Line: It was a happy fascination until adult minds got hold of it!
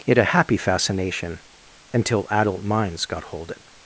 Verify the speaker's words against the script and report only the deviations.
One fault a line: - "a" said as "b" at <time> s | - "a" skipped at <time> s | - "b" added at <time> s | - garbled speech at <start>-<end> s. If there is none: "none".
- "was" skipped at 0.2 s
- "of" skipped at 3.5 s